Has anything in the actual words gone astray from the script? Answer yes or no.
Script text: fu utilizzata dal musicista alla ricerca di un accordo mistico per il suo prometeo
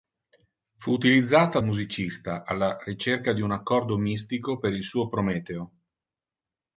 yes